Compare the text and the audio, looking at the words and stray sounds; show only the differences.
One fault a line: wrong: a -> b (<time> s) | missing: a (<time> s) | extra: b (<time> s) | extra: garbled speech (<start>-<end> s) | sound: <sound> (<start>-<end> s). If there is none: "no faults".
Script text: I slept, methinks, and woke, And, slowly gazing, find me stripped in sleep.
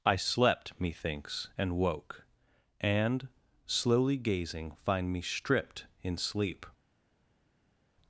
no faults